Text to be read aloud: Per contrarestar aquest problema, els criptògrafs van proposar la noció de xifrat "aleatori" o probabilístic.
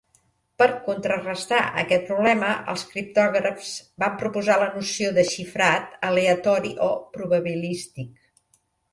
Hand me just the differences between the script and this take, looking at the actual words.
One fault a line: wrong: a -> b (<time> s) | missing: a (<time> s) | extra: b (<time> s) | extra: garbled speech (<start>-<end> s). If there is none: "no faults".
no faults